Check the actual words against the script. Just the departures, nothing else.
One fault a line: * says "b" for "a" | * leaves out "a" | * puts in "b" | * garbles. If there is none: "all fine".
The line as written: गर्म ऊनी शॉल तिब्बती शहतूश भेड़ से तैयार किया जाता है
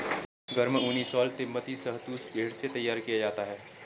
all fine